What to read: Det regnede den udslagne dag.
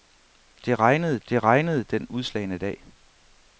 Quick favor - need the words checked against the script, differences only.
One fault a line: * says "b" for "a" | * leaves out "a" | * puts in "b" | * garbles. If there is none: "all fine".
* puts in "det regnede"